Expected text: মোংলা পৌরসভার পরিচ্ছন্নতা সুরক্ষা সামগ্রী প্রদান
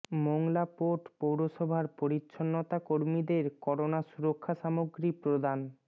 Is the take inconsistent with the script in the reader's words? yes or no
yes